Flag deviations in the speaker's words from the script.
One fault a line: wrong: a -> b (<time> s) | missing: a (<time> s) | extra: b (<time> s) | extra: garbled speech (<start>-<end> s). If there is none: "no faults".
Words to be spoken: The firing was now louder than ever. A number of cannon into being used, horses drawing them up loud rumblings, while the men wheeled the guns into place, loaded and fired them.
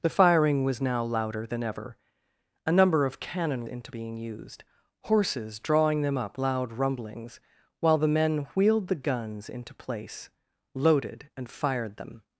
no faults